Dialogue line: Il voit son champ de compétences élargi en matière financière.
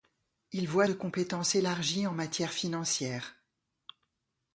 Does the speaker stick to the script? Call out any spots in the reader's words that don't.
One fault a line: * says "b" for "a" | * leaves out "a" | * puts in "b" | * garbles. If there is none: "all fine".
* leaves out "son champ"